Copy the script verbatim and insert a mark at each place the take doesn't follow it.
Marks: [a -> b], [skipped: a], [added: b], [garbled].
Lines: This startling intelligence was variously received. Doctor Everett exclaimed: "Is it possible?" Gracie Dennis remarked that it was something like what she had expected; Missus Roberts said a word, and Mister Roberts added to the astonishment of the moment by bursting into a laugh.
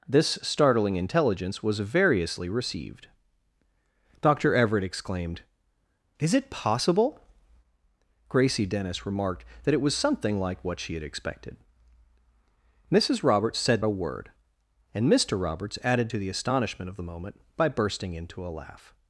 This startling intelligence was variously received. Doctor Everett exclaimed: "Is it possible?" Gracie Dennis remarked that it was something like what she had expected; Missus Roberts said a word, and Mister Roberts added to the astonishment of the moment by bursting into a laugh.